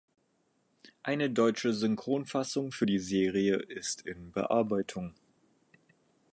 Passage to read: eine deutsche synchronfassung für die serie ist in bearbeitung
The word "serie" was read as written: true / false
true